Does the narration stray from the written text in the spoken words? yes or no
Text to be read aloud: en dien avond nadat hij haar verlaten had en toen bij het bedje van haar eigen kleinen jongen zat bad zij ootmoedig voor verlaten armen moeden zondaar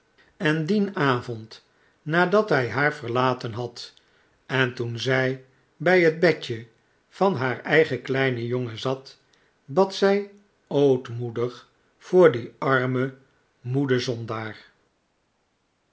yes